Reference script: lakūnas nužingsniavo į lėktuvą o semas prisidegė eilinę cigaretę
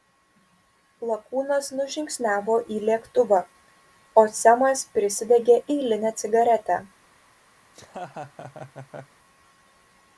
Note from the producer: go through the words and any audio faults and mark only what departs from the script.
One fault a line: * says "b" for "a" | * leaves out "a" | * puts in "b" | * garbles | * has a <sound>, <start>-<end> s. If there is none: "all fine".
* has a laugh, 7.6-9.2 s